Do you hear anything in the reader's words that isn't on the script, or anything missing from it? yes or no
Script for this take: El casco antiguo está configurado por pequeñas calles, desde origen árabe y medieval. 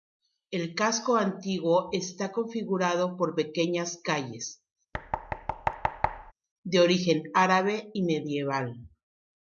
yes